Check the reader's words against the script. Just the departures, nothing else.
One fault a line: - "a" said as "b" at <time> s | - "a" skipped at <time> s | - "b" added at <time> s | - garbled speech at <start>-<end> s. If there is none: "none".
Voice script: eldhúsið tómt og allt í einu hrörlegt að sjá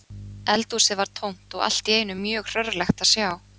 - "var" added at 1.0 s
- "mjög" added at 2.2 s